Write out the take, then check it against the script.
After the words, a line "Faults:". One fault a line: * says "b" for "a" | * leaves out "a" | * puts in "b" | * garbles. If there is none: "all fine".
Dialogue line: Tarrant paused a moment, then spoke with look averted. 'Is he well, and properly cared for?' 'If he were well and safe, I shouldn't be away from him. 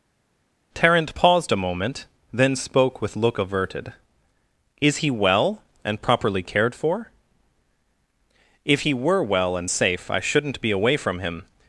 Tarrant paused a moment, then spoke with look averted. 'Is he well, and properly cared for?' 'If he were well and safe, I shouldn't be away from him.
Faults:
all fine